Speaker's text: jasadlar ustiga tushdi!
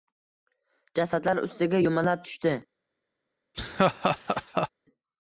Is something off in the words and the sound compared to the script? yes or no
yes